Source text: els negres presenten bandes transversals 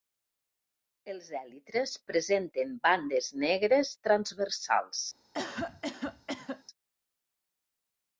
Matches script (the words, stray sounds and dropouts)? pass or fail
fail